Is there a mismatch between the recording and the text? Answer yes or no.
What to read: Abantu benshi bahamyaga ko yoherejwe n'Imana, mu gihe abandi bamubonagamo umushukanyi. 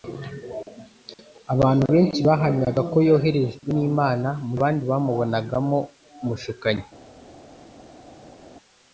yes